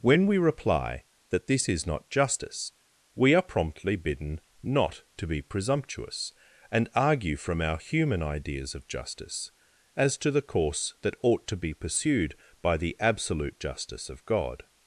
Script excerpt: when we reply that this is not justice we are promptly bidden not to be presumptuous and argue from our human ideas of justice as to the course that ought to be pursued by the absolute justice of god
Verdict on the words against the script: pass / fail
pass